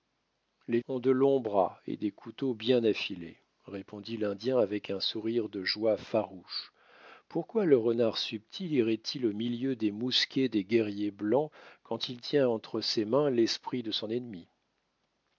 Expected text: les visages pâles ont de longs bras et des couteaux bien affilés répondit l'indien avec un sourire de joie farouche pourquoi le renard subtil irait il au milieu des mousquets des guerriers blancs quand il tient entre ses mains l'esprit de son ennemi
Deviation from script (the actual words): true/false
true